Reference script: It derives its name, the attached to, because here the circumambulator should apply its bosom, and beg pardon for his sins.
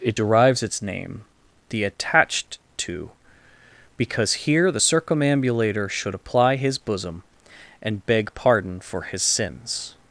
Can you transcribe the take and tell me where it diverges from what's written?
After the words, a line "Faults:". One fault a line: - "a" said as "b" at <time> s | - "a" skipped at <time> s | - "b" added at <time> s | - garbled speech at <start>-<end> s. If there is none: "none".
It derives its name, the attached to, because here the circumambulator should apply his bosom, and beg pardon for his sins.
Faults:
- "its" said as "his" at 6.6 s